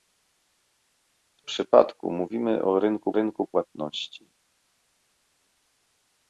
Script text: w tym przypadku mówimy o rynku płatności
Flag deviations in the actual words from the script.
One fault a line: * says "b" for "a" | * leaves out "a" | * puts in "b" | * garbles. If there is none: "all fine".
* leaves out "tym"
* puts in "rynku"